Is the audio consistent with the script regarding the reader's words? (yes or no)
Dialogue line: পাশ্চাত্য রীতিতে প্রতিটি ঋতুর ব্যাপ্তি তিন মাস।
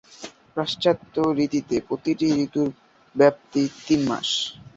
yes